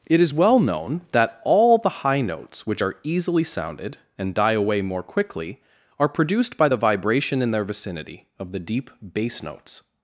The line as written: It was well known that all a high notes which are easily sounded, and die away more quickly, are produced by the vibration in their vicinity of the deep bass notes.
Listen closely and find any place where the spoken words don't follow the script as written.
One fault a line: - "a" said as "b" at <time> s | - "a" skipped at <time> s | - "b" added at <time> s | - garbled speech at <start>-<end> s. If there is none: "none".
- "was" said as "is" at 0.2 s
- "a" said as "the" at 1.8 s